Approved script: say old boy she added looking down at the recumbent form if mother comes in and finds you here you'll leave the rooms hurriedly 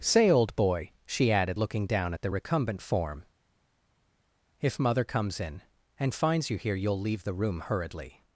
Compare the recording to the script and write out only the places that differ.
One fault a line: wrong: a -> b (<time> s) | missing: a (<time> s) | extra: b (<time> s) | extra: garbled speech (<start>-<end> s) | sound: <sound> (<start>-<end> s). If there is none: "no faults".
wrong: rooms -> room (7.3 s)